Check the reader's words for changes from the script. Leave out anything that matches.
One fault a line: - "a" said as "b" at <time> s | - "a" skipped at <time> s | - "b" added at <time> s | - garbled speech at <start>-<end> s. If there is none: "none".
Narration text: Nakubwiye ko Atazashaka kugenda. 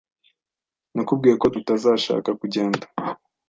none